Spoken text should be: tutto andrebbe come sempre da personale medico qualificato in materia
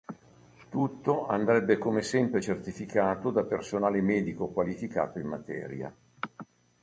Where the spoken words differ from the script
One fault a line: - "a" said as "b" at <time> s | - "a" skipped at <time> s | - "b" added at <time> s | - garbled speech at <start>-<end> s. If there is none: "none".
- "certificato" added at 2.4 s